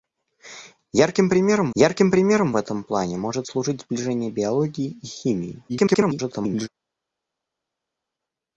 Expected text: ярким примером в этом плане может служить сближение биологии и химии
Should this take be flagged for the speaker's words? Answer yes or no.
yes